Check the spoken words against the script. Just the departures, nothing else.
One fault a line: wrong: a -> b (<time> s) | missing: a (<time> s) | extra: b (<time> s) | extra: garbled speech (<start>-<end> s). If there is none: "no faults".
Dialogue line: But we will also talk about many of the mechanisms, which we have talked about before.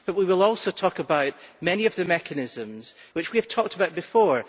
no faults